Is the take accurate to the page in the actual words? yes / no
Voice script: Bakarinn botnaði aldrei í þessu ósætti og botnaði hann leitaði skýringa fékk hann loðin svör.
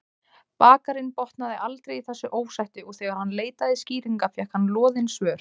no